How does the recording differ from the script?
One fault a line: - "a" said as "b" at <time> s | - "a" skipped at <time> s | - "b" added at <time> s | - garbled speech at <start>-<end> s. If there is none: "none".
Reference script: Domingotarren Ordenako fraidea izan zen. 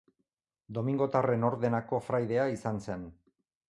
none